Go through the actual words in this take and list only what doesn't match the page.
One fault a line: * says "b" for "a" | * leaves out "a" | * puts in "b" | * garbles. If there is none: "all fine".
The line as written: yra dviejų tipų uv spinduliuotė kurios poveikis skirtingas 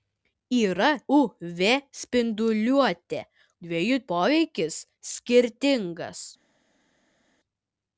* leaves out "dviejų tipų"
* says "dviejų" for "kurios"